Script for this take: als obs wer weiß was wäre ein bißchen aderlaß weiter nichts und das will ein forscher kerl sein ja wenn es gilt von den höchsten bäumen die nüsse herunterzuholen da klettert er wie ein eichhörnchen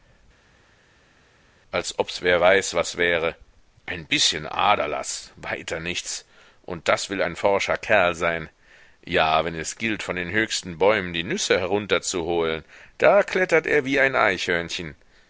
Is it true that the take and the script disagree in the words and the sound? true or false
false